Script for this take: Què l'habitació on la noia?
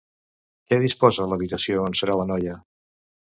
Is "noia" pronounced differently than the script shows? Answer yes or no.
no